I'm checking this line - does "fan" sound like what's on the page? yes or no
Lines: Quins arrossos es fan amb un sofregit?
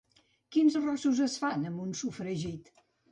yes